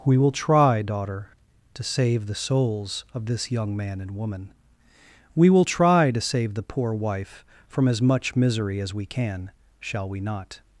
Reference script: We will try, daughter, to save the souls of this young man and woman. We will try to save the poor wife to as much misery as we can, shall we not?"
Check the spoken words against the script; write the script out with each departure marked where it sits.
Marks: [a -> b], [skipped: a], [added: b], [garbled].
We will try, daughter, to save the souls of this young man and woman. We will try to save the poor wife [to -> from] as much misery as we can, shall we not?"